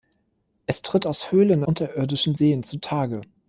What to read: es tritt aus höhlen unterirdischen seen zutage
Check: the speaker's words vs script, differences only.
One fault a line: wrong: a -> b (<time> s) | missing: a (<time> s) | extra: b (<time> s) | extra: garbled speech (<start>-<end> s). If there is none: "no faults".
no faults